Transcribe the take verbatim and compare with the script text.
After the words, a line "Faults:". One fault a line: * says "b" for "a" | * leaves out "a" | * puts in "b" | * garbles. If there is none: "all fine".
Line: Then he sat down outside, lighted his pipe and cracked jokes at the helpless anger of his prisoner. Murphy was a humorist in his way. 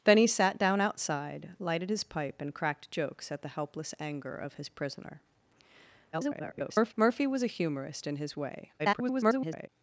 Then he sat down outside, lighted his pipe and cracked jokes at the helpless anger of his prisoner. [garbled] Murphy was a humorist in his way. [garbled]
Faults:
* garbles
* garbles